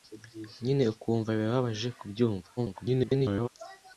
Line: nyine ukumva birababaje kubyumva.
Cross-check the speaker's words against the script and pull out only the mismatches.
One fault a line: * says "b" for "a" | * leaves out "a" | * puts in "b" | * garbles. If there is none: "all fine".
* garbles